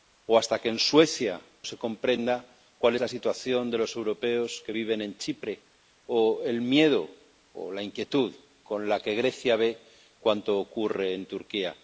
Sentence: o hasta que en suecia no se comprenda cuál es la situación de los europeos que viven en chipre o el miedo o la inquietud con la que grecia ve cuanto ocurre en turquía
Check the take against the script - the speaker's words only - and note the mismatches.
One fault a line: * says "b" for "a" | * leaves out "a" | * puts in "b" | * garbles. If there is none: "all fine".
* leaves out "no"
* leaves out "es"